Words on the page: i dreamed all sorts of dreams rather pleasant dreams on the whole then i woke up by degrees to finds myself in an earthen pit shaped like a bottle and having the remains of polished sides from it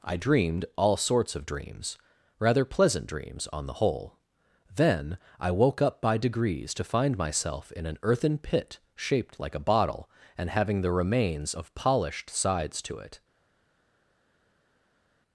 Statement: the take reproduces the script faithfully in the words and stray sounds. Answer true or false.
false